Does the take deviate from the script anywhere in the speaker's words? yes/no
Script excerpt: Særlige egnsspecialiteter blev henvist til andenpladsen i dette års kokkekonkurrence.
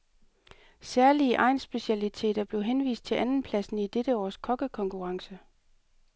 no